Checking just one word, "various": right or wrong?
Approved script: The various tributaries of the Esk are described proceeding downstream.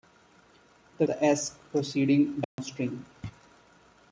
wrong